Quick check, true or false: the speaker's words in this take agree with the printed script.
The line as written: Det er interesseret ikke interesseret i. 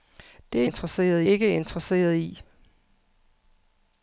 true